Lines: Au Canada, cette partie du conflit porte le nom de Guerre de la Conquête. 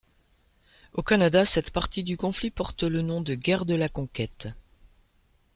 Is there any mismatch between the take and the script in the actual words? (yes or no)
no